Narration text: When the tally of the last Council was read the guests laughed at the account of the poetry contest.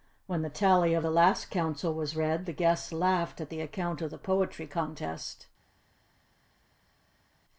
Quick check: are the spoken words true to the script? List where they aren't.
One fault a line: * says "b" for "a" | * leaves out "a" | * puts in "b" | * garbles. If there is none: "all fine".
all fine